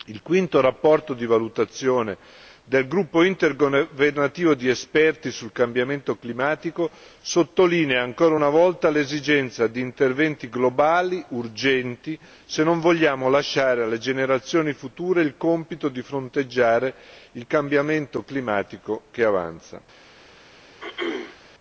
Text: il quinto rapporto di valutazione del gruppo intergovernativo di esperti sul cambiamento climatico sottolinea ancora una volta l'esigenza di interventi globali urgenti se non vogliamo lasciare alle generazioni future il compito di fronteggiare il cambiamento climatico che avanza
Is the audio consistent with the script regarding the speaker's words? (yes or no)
yes